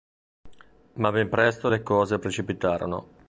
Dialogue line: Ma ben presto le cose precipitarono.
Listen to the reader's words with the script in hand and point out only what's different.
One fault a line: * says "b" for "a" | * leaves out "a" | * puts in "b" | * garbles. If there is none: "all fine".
all fine